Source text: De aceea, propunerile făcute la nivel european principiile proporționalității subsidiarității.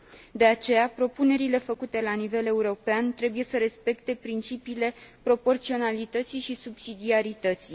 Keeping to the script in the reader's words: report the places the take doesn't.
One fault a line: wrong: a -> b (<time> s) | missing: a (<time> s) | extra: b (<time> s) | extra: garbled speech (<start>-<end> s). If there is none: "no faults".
extra: trebuie să respecte (3.1 s)
extra: și (6.4 s)